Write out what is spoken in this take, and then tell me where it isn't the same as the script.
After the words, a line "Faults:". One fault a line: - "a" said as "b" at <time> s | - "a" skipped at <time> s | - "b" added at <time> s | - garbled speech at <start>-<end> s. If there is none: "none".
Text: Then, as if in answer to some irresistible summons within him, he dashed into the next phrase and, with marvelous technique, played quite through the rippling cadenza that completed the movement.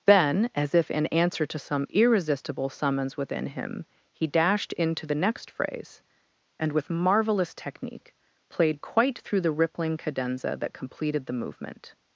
Then, as if in answer to some irresistible summons within him, he dashed into the next phrase and, with marvelous technique, played quite through the rippling cadenza that completed the movement.
Faults:
none